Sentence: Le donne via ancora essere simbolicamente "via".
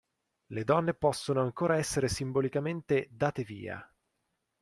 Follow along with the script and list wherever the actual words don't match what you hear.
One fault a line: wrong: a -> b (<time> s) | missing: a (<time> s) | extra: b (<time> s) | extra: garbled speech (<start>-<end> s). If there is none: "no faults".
wrong: via -> possono (0.9 s)
extra: date (3.1 s)